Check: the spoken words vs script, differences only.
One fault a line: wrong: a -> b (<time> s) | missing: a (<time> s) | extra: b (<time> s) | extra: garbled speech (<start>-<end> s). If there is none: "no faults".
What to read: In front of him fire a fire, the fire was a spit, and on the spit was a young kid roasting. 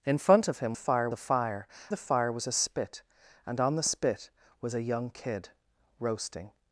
no faults